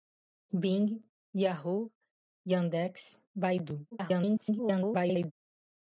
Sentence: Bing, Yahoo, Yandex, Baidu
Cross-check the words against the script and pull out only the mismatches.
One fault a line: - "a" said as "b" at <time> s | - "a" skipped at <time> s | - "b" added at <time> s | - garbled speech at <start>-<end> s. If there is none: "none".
- garbled speech at 3.9-5.3 s